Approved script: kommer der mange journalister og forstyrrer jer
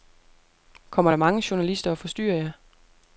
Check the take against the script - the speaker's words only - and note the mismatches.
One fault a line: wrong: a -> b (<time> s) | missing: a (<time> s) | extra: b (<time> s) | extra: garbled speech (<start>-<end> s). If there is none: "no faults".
no faults